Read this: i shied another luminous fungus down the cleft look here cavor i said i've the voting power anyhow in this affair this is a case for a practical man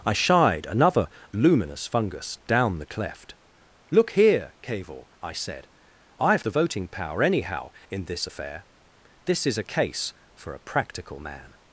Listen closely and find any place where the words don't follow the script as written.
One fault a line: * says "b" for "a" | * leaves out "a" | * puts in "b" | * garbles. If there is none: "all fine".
all fine